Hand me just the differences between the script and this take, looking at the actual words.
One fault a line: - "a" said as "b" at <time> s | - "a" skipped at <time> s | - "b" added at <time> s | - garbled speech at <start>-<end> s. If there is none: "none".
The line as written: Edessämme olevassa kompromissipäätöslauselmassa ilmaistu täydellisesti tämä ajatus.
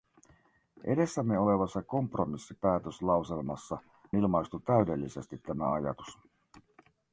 none